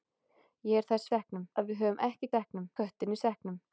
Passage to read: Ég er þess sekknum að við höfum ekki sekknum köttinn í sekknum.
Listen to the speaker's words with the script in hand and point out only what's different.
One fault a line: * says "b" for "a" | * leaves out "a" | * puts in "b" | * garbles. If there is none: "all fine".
all fine